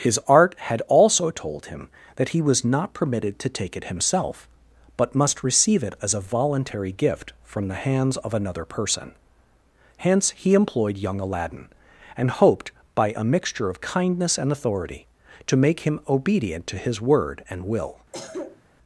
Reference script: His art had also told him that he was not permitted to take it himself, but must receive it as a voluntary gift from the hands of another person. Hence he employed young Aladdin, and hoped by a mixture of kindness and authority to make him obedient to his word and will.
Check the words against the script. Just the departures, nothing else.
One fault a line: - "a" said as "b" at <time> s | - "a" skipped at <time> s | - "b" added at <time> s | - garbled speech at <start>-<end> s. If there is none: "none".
none